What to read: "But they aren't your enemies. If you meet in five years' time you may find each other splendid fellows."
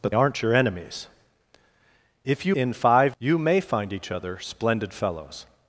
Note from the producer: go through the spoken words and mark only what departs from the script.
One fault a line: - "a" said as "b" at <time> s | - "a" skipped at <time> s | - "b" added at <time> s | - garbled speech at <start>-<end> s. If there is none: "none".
- "they" skipped at 0.1 s
- "meet" skipped at 2.5 s
- "years time" skipped at 3.2 s